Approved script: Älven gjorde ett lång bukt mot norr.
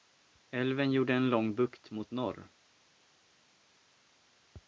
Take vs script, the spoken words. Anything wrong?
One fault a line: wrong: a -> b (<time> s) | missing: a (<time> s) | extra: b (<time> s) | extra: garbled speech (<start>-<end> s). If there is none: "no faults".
wrong: ett -> en (1.1 s)